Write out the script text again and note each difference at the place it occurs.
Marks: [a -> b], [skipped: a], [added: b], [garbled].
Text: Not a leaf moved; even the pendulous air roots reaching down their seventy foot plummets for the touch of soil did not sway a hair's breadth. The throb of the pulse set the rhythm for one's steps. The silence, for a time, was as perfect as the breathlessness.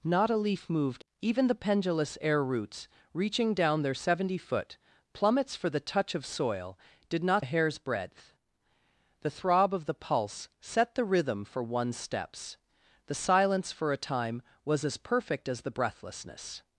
Not a leaf moved; even the pendulous air roots reaching down their seventy foot plummets for the touch of soil did not [skipped: sway] a hair's breadth. The throb of the pulse set the rhythm for one's steps. The silence, for a time, was as perfect as the breathlessness.